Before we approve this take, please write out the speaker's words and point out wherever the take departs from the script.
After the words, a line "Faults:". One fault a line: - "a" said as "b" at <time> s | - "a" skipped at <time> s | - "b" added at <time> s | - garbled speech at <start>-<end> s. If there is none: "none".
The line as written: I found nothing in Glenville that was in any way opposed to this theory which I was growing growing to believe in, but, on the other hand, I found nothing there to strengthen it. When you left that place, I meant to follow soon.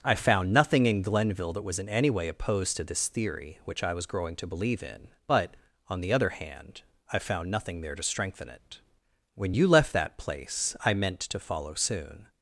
I found nothing in Glenville that was in any way opposed to this theory which I was growing to believe in, but, on the other hand, I found nothing there to strengthen it. When you left that place, I meant to follow soon.
Faults:
- "growing" skipped at 4.3 s